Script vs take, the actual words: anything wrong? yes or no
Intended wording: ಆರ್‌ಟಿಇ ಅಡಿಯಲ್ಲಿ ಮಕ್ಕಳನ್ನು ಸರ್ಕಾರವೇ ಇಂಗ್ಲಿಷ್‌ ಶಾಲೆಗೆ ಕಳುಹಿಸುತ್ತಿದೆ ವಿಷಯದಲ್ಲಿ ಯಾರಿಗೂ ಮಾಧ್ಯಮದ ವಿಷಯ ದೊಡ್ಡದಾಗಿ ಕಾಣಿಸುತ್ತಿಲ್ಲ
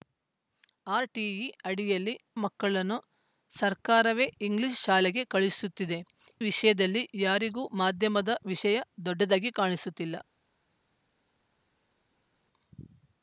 no